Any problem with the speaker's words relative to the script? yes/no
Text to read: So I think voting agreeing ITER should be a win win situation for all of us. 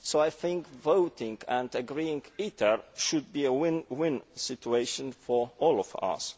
yes